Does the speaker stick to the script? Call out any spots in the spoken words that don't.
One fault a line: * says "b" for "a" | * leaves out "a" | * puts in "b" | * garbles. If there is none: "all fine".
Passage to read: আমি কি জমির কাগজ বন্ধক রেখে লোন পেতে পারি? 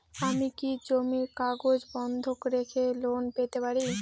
all fine